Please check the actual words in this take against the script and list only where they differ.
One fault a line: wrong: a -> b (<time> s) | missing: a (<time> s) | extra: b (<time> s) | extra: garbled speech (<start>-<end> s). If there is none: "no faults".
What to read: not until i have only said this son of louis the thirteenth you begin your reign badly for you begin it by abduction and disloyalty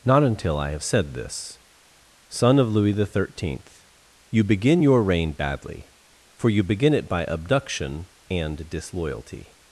missing: only (0.8 s)